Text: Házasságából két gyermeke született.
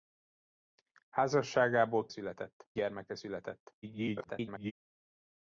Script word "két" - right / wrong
wrong